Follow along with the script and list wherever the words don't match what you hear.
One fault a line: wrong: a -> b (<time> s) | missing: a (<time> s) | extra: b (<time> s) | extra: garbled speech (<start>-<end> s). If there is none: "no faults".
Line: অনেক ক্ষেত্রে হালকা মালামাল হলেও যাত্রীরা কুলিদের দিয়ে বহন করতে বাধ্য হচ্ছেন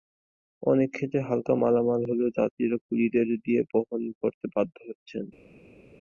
no faults